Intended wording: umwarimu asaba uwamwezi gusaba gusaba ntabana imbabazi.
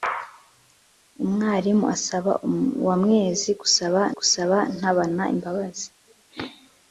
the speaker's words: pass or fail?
pass